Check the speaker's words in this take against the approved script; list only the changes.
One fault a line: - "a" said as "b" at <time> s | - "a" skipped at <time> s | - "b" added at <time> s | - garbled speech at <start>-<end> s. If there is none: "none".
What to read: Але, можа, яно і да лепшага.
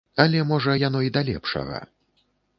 none